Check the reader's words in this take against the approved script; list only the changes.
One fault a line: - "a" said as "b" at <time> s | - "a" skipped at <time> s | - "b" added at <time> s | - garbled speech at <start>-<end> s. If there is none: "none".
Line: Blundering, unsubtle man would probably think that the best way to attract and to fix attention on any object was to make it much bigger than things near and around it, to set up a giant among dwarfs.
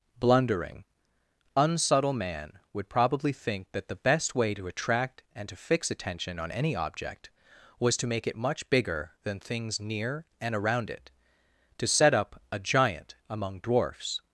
none